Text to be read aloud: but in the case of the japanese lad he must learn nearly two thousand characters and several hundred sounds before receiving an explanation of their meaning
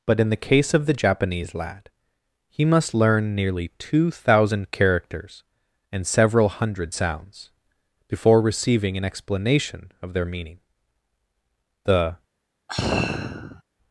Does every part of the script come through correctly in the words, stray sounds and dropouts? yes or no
no